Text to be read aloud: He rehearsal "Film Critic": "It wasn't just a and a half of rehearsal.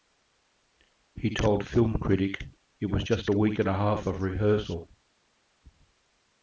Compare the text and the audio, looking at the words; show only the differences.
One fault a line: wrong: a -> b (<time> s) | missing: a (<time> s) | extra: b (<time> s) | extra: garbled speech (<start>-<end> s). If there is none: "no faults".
wrong: rehearsal -> told (1.3 s)
wrong: wasn't -> was (2.9 s)
extra: week (3.3 s)